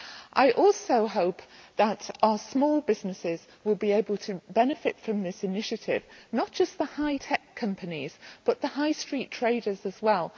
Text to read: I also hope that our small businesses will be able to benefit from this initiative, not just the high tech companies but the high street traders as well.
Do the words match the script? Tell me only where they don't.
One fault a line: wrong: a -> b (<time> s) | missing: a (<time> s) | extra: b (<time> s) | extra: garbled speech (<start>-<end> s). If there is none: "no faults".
no faults